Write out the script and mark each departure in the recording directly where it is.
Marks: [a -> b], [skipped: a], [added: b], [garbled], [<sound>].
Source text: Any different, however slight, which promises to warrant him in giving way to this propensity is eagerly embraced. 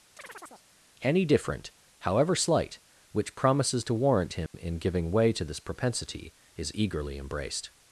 [chirp] Any different, however slight, which promises to warrant him [dropout] in giving way to this propensity is eagerly embraced.